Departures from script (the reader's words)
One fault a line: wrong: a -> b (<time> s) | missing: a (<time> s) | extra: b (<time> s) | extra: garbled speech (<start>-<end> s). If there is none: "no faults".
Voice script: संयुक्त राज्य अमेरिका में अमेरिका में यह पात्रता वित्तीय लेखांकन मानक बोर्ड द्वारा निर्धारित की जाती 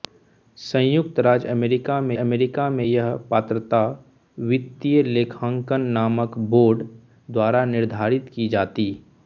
no faults